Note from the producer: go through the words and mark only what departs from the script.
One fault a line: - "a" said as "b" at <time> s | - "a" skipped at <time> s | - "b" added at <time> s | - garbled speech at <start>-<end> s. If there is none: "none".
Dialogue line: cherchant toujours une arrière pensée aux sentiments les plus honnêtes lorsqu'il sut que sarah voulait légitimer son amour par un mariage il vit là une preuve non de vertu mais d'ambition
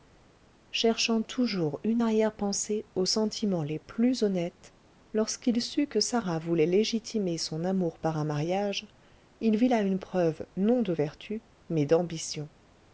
none